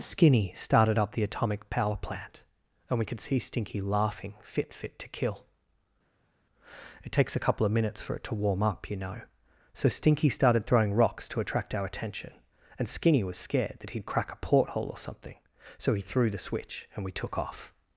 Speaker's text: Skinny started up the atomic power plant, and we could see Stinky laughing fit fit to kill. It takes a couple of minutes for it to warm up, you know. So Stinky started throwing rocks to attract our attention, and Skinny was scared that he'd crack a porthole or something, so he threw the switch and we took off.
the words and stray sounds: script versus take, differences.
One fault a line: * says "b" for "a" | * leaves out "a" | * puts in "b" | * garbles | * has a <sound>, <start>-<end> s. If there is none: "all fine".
all fine